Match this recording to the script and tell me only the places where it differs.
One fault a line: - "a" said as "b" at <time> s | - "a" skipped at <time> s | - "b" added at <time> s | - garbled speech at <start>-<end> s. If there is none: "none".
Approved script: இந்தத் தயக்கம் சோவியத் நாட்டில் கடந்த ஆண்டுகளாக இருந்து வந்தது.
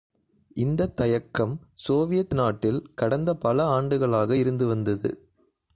- "பல" added at 3.4 s